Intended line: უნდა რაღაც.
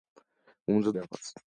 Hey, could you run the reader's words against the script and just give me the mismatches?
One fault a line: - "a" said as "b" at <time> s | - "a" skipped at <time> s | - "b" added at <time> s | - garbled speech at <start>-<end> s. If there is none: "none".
none